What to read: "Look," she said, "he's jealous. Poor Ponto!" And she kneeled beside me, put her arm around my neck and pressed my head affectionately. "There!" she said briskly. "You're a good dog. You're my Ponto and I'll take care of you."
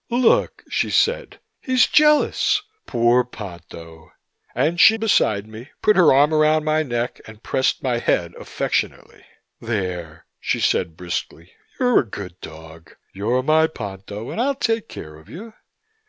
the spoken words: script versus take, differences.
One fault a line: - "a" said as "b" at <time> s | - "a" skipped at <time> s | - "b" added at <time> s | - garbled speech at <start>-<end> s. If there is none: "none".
- "kneeled" skipped at 5.0 s